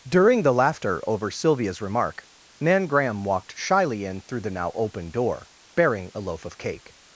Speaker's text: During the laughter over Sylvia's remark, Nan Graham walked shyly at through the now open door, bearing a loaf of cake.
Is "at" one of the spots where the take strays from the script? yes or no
yes